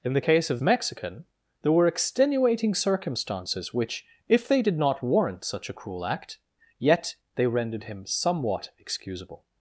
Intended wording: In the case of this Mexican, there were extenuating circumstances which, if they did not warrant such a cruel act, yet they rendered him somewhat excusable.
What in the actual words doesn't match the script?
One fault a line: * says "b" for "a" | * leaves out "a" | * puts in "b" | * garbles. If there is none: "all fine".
* leaves out "this"